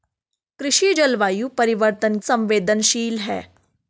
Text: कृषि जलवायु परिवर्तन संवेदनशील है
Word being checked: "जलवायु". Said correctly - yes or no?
yes